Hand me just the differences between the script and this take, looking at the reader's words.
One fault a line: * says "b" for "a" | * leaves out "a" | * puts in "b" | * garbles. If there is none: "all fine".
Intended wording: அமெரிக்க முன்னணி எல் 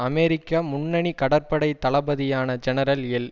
* puts in "கடற்படை தளபதியான ஜெனரல்"